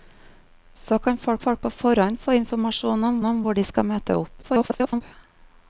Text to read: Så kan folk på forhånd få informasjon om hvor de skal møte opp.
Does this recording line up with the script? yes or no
no